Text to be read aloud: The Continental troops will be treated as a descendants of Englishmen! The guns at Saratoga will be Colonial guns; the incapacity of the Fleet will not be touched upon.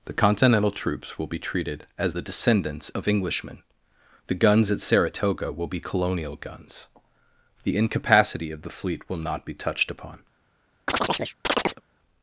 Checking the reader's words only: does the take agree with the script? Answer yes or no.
no